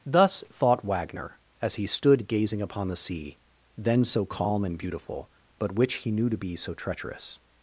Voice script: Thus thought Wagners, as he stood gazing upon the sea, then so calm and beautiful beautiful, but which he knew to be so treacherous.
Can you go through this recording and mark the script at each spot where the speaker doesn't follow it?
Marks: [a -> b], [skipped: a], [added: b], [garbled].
Thus thought [Wagners, -> Wagner] as he stood gazing upon the sea, then so calm and beautiful [skipped: beautiful,] but which he knew to be so treacherous.